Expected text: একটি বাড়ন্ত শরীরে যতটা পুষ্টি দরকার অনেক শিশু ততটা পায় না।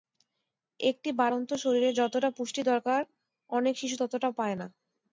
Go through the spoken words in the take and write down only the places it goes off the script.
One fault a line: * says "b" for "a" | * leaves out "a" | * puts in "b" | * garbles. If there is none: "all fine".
all fine